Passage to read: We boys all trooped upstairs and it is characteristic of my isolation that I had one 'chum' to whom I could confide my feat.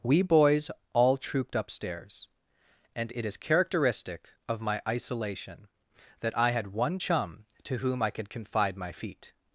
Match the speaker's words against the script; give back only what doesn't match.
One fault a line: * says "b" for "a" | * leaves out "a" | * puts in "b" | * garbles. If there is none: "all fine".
all fine